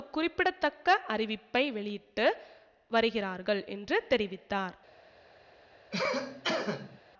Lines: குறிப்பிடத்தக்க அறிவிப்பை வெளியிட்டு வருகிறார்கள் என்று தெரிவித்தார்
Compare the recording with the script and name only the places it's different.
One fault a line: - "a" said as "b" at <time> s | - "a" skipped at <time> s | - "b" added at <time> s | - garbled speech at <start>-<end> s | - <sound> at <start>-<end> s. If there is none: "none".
- cough at 5.9-7.0 s